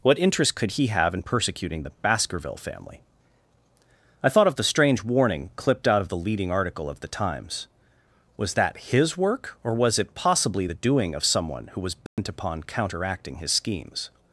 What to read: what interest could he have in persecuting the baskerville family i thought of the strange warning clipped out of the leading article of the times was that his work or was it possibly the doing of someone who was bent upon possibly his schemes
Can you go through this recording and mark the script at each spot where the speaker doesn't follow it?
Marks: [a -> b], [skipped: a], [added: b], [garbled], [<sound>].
what interest could he have in persecuting the baskerville family i thought of the strange warning clipped out of the leading article of the times was that his work or was it possibly the doing of someone who was bent [dropout] upon [possibly -> counteracting] his schemes